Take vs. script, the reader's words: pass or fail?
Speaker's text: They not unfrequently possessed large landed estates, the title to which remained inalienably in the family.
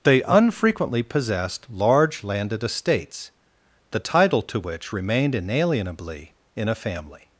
fail